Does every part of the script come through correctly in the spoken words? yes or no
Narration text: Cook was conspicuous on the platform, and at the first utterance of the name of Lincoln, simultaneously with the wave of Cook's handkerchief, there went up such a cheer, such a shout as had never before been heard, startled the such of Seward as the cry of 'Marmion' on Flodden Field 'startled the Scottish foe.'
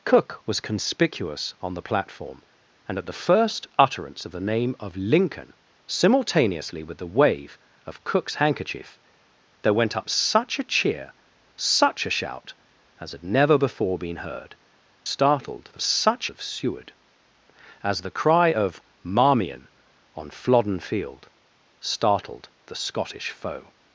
yes